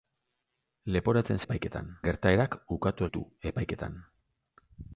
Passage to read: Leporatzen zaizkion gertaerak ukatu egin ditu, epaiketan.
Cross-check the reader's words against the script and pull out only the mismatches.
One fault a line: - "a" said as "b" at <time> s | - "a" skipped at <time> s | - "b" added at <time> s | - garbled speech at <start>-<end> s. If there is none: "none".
- "zaizkion" said as "epaiketan" at 1.5 s
- "egin" skipped at 3.1 s